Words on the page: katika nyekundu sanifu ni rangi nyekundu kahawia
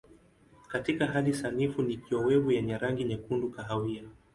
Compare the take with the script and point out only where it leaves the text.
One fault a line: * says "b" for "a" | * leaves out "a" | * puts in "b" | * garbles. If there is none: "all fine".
* says "hali" for "nyekundu"
* puts in "kiowevu yenye"